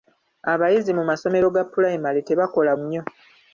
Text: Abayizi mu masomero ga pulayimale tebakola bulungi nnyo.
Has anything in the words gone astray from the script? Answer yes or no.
yes